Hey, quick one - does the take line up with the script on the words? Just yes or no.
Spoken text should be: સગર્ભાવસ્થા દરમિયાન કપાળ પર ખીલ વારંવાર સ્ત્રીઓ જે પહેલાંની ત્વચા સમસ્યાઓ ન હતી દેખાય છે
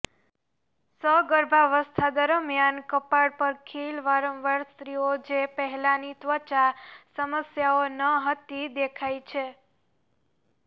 yes